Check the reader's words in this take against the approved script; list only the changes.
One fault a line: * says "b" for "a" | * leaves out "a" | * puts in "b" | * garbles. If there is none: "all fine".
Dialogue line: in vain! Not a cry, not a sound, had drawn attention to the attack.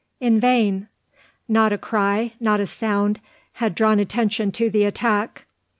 all fine